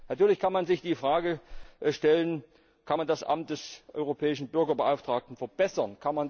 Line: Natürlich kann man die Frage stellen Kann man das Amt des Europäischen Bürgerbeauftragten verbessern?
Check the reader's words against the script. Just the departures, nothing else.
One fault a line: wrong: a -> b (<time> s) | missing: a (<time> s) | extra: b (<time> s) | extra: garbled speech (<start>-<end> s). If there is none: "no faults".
extra: sich (0.7 s)